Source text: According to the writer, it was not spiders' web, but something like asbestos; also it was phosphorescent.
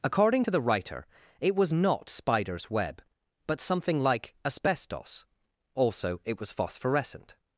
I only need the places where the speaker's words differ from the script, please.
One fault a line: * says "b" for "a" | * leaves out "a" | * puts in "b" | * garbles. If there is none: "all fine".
all fine